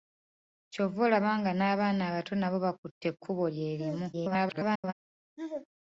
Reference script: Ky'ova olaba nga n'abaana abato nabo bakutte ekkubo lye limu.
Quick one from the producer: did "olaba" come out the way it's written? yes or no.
yes